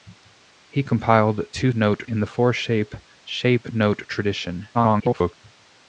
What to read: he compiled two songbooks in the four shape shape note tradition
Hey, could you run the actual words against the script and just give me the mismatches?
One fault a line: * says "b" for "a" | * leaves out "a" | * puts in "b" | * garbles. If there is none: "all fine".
* says "note" for "songbooks"
* garbles